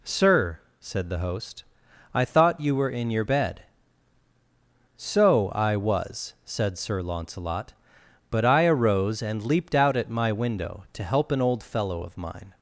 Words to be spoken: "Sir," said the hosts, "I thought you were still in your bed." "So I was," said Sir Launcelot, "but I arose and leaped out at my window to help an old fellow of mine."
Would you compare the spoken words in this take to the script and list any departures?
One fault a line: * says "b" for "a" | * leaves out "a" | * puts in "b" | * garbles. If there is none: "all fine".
* says "host" for "hosts"
* leaves out "still"